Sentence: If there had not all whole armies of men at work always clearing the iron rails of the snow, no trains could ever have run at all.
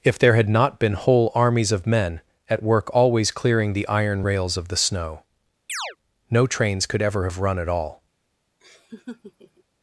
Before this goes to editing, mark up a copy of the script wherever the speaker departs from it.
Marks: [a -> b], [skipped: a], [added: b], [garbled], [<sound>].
If there had not [all -> been] whole armies of men at work always clearing the iron rails of the snow, [chirp] no trains could ever have run at all. [laugh]